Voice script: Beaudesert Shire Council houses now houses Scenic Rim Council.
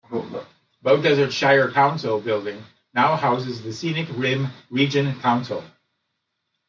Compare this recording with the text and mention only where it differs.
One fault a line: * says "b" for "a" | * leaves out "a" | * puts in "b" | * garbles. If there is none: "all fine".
* says "building" for "houses"
* puts in "the"
* puts in "Region"